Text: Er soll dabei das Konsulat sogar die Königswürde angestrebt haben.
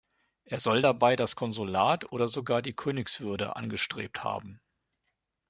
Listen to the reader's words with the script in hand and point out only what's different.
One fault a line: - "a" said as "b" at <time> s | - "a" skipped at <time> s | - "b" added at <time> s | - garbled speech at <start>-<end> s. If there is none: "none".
- "oder" added at 2.1 s